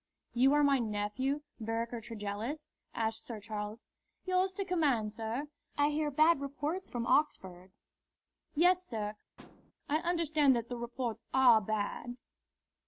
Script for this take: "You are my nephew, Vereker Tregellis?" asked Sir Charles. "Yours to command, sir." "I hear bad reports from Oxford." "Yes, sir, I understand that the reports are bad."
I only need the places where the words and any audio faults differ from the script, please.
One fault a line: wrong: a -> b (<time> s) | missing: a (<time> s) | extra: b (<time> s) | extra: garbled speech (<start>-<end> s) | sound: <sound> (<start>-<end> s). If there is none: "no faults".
sound: thud (9.4-9.7 s)